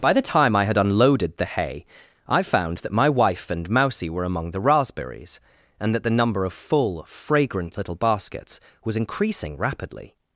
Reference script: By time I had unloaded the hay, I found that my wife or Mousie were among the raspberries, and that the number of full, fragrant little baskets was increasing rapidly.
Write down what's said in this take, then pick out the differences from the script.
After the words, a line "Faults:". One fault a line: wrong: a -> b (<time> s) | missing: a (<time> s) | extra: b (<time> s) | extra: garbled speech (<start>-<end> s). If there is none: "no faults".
By the time I had unloaded the hay, I found that my wife and Mousie were among the raspberries, and that the number of full, fragrant little baskets was increasing rapidly.
Faults:
extra: the (0.1 s)
wrong: or -> and (3.5 s)